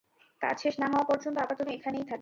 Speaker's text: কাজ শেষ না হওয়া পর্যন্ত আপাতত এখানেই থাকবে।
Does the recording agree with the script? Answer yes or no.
yes